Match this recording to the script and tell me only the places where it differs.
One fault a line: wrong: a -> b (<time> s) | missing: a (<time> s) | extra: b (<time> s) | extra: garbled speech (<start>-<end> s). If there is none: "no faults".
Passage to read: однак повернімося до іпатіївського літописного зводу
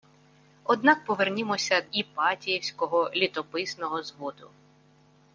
missing: до (1.8 s)